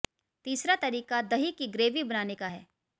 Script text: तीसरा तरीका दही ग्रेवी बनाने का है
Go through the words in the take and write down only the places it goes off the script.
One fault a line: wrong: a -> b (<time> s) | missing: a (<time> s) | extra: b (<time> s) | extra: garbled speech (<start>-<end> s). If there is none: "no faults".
extra: की (1.5 s)